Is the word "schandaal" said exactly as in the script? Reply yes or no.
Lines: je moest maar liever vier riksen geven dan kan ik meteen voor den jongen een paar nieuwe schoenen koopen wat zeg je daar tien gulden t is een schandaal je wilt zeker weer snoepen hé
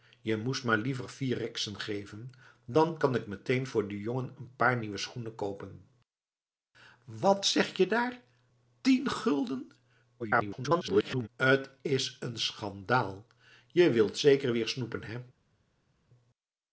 yes